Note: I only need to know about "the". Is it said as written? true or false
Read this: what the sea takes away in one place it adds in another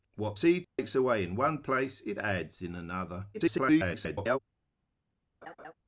false